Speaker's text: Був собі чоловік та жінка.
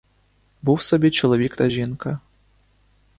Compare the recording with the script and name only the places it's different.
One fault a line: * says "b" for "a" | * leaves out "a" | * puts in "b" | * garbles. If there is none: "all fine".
all fine